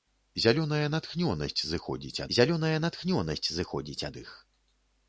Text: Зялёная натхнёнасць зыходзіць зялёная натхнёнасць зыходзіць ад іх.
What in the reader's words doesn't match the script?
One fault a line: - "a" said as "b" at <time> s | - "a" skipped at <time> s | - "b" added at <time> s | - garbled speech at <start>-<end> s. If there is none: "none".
none